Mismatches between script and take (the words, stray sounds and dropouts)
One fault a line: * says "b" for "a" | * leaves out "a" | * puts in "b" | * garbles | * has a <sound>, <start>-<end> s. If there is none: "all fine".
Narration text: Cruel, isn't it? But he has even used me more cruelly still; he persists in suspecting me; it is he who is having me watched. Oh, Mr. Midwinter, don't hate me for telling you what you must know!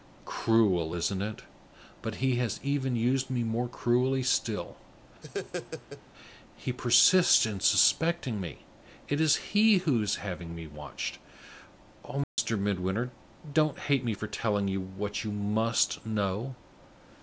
* has a laugh, 5.2-6.0 s
* has a dropout, 12.2-12.4 s